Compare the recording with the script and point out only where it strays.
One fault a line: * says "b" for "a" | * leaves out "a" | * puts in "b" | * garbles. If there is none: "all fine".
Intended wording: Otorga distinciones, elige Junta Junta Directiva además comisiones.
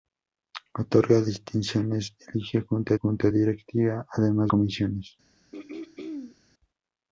all fine